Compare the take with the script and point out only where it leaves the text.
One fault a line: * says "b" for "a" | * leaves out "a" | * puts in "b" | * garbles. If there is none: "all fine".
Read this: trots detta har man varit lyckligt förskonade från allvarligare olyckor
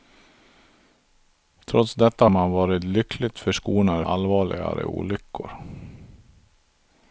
* leaves out "har"
* leaves out "från"